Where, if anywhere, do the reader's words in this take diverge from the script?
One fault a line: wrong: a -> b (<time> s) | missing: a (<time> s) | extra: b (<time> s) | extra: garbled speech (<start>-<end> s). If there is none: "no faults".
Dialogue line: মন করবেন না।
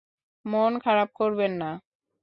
extra: খারাপ (0.8 s)